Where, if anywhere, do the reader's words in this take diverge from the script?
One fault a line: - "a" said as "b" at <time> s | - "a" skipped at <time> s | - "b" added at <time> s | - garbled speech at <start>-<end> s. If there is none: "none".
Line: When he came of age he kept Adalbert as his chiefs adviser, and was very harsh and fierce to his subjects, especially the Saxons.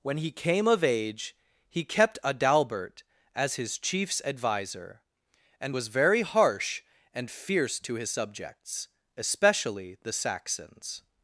none